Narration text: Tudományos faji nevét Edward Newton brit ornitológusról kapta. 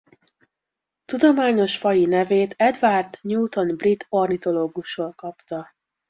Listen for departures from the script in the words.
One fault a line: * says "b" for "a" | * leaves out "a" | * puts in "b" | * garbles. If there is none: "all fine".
all fine